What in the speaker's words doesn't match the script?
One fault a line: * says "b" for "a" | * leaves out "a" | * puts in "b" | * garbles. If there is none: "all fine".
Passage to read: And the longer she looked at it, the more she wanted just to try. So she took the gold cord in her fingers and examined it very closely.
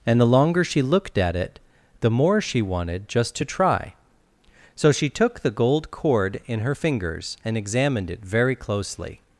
all fine